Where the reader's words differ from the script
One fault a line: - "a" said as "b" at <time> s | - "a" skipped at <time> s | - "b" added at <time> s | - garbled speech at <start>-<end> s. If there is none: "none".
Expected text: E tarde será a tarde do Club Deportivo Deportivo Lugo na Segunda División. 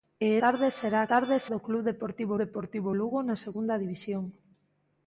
none